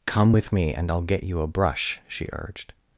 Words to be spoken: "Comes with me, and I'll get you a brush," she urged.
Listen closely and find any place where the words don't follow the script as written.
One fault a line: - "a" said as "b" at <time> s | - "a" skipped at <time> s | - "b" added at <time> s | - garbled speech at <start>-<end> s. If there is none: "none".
- "Comes" said as "Come" at 0.1 s